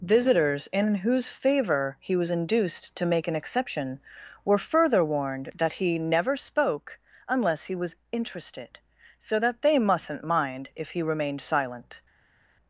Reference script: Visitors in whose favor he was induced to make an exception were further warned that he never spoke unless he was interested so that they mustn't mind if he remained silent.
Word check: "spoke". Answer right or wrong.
right